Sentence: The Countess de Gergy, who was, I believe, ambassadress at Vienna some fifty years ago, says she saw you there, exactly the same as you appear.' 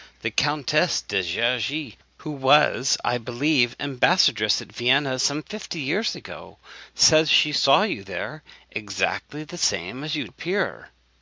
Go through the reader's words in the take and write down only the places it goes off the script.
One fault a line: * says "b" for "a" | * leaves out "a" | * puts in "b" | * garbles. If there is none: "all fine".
all fine